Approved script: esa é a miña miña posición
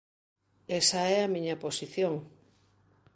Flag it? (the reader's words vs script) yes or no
yes